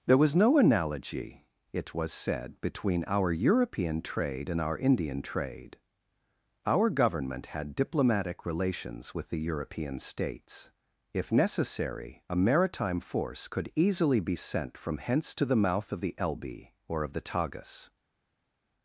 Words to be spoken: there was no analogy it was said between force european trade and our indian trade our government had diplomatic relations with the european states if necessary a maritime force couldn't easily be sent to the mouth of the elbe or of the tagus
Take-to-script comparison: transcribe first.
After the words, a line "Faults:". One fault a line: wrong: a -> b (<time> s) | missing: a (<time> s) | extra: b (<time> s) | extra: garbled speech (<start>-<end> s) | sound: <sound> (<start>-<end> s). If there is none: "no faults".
there was no analogy it was said between our european trade and our indian trade our government had diplomatic relations with the european states if necessary a maritime force could easily be sent from hence to the mouth of the elbe or of the tagus
Faults:
wrong: force -> our (3.0 s)
wrong: couldn't -> could (13.5 s)
extra: from hence (14.8 s)